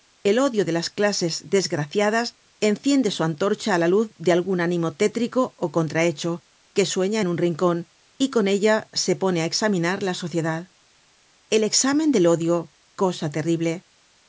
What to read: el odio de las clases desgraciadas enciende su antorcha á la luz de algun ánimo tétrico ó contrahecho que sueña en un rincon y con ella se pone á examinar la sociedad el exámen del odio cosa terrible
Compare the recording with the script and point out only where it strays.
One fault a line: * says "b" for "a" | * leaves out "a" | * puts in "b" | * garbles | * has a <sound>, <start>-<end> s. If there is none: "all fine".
all fine